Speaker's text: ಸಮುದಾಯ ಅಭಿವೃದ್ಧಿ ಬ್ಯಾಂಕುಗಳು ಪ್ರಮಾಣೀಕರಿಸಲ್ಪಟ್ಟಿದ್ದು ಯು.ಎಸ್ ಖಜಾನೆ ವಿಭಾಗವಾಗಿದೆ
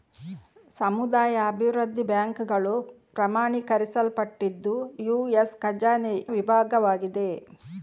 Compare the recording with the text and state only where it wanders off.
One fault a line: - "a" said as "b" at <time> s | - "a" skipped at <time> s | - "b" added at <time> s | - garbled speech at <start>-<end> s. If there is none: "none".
none